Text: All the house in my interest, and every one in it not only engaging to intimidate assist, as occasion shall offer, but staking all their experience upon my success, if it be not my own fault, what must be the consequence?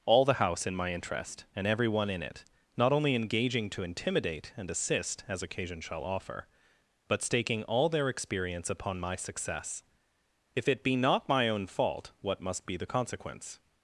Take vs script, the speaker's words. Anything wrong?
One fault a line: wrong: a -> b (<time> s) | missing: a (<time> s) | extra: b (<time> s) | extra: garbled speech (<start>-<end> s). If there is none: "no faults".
extra: and (4.6 s)